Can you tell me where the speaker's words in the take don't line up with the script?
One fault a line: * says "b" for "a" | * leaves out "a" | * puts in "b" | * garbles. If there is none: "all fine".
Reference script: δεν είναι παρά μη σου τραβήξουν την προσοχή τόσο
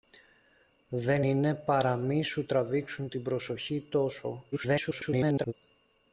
* garbles